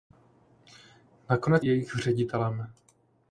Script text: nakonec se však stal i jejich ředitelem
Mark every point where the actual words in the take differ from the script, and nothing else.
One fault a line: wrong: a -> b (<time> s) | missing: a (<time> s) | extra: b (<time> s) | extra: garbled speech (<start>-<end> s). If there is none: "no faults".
missing: se však stal (1.6 s)